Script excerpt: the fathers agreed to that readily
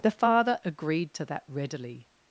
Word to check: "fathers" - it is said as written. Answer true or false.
false